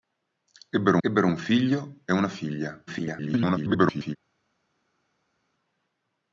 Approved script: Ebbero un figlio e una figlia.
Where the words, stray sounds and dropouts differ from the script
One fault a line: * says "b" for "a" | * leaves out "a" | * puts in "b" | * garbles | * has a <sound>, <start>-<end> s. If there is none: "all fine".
* puts in "ebbero"
* garbles